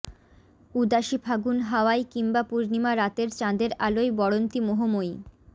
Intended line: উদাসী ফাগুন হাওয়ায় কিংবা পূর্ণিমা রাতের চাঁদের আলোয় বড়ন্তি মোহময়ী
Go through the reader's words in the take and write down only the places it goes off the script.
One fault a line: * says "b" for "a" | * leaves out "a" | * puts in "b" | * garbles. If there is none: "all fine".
all fine